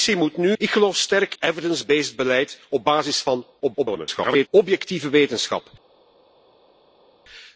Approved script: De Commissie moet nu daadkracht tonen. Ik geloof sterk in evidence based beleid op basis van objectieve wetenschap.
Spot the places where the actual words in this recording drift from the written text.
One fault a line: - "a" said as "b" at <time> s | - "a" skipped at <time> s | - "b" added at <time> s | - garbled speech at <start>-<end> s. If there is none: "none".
- "nu daadkracht tonen" skipped at 0.5 s
- "in" skipped at 1.4 s
- garbled speech at 3.6-4.5 s